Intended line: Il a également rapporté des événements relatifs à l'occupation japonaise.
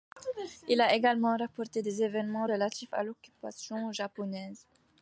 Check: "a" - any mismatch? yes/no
no